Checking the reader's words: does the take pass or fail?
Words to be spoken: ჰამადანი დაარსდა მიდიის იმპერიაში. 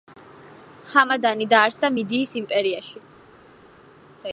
pass